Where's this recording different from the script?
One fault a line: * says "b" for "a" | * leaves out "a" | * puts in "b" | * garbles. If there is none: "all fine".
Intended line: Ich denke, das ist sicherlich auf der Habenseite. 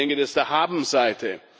* leaves out "ist sicherlich auf"